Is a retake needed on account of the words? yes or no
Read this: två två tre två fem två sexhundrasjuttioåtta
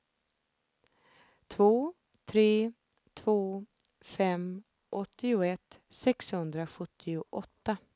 yes